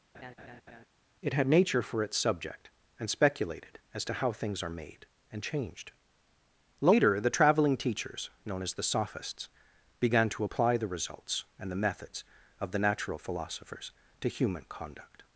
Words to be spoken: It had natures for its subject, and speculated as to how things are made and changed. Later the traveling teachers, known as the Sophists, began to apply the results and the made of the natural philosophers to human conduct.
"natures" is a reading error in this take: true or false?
true